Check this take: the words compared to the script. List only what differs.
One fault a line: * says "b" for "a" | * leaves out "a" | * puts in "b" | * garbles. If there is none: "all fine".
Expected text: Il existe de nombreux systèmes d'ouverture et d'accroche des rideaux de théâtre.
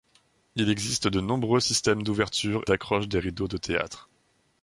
* leaves out "et"